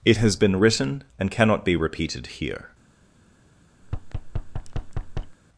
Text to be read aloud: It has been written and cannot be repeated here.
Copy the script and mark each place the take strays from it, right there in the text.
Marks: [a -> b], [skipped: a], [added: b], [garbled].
It has been written and cannot be repeated here.